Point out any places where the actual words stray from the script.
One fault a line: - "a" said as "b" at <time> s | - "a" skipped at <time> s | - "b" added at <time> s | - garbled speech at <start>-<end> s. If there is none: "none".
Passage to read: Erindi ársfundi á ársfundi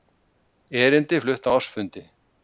- "ársfundi" said as "flutt" at 1.2 s